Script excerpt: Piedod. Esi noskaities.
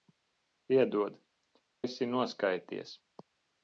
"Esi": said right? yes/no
yes